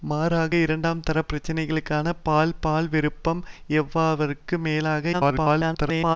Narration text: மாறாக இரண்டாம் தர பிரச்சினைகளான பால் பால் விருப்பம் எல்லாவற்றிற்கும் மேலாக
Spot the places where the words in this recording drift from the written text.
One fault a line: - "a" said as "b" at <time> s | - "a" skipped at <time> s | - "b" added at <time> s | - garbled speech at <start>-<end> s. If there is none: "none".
- garbled speech at 5.1-6.2 s